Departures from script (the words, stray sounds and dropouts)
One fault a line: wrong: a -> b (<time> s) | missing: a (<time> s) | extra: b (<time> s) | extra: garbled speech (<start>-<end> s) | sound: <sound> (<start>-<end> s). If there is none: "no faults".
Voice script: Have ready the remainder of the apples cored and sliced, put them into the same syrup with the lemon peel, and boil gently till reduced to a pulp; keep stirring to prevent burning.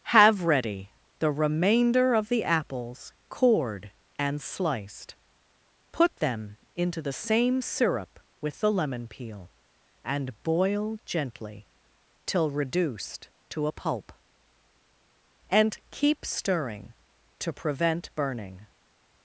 extra: and (15.5 s)